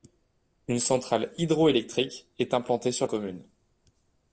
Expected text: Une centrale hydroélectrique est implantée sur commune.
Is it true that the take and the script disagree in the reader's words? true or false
false